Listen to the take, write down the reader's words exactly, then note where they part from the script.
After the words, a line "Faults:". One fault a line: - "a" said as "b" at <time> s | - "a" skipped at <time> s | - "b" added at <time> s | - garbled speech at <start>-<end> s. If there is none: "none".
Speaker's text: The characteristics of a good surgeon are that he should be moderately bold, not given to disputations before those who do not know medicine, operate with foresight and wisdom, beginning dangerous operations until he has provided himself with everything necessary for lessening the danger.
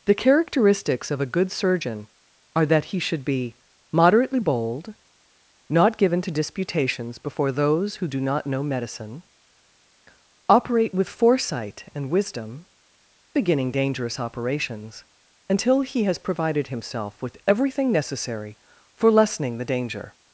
The characteristics of a good surgeon are that he should be moderately bold, not given to disputations before those who do not know medicine, operate with foresight and wisdom, beginning dangerous operations until he has provided himself with everything necessary for lessening the danger.
Faults:
none